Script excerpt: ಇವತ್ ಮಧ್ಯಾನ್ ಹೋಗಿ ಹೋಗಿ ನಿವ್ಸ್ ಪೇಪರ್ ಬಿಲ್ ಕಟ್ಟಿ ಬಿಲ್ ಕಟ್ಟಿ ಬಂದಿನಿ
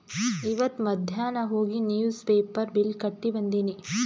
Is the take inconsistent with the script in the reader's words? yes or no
yes